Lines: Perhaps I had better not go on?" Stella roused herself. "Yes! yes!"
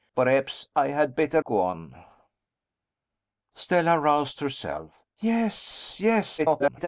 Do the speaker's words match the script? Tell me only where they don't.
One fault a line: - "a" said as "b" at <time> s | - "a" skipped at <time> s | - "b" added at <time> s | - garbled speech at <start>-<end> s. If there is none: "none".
- "not" skipped at 1.4 s
- garbled speech at 6.4-6.9 s